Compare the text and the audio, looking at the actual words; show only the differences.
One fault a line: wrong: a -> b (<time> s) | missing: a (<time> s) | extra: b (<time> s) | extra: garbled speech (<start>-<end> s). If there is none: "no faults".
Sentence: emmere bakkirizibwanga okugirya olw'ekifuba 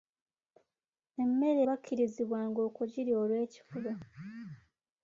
no faults